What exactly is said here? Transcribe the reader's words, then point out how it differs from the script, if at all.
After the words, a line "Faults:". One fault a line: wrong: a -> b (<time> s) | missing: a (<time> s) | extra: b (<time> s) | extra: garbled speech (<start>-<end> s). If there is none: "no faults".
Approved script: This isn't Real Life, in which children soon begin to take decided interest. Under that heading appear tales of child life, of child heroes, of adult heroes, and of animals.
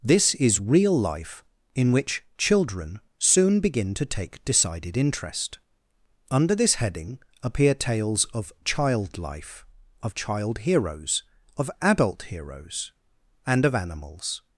This is Real Life, in which children soon begin to take decided interest. Under this heading appear tales of child life, of child heroes, of adult heroes, and of animals.
Faults:
wrong: isn't -> is (0.3 s)
wrong: that -> this (6.5 s)